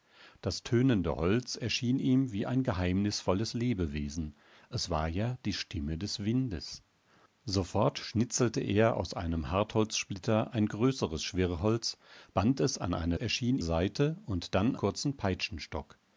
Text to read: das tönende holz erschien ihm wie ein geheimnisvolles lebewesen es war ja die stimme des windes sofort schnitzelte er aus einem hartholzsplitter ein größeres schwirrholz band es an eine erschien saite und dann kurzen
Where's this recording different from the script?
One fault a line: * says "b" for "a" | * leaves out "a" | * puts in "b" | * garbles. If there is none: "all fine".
all fine